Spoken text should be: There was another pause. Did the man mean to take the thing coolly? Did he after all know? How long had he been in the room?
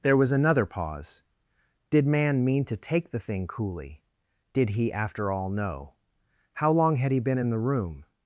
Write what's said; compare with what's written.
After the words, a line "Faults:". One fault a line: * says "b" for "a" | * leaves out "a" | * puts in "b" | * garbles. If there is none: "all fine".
There was another pause. Did man mean to take the thing coolly? Did he after all know? How long had he been in the room?
Faults:
* leaves out "the"